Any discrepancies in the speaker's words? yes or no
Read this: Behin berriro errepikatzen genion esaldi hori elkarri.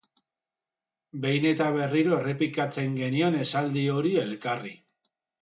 yes